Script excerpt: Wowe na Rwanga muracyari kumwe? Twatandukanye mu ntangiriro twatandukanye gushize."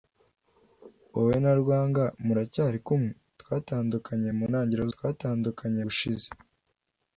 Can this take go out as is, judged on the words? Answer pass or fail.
pass